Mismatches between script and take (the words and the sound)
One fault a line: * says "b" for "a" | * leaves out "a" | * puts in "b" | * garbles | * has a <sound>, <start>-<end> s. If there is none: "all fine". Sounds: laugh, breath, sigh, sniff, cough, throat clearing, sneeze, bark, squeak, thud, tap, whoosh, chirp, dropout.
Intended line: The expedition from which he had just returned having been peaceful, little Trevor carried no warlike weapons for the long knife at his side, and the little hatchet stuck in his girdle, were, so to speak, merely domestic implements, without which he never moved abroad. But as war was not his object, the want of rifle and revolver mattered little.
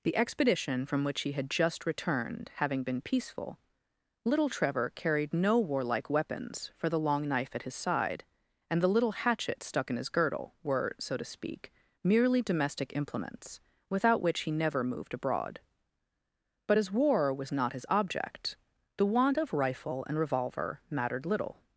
all fine